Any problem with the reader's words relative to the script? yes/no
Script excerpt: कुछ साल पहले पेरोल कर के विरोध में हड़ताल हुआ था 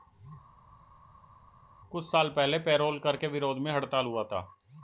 no